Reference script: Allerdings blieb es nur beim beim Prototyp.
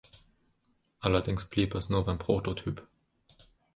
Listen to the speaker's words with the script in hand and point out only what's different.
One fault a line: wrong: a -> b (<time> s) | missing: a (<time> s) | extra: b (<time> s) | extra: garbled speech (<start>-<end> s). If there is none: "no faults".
missing: beim (2.2 s)